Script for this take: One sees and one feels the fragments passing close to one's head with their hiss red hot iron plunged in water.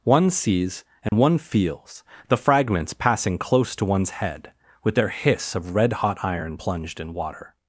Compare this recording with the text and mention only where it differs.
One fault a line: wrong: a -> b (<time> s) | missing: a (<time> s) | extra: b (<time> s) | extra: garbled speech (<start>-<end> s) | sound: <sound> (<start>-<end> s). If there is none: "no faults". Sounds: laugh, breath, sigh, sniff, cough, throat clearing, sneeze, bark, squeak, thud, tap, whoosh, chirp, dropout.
sound: dropout (1.1-1.1 s)
extra: of (5.5 s)